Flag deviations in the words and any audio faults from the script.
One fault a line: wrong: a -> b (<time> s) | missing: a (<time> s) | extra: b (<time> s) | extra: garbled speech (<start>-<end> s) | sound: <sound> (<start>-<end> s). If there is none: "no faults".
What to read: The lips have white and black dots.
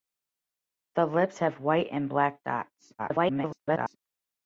extra: garbled speech (3.0-4.0 s)